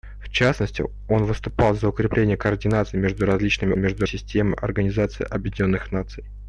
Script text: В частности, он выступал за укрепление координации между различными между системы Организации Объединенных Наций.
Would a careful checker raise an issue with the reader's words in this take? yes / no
no